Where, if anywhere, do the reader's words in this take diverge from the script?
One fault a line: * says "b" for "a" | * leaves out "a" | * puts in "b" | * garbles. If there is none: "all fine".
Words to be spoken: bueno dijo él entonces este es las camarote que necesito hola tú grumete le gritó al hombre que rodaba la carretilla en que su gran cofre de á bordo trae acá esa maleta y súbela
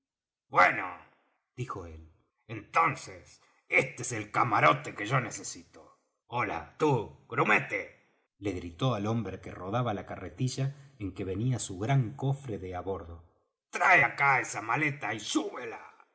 * says "el" for "las"
* puts in "yo"
* puts in "venía"